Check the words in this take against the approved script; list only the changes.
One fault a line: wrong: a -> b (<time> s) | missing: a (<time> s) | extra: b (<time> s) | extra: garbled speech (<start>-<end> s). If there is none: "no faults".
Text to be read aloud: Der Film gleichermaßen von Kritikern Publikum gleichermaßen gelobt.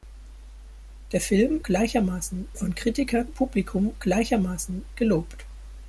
no faults